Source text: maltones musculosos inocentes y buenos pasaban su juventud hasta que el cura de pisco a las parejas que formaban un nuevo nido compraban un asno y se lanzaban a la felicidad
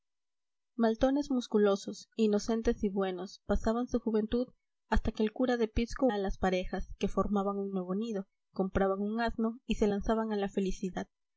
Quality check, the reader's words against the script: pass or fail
pass